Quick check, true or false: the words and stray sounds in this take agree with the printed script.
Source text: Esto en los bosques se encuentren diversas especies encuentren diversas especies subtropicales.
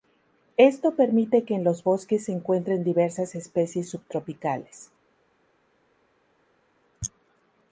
false